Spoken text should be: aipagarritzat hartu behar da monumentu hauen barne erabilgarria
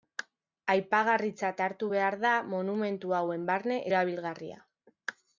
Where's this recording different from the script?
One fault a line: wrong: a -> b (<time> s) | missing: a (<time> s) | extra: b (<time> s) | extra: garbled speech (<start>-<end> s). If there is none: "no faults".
no faults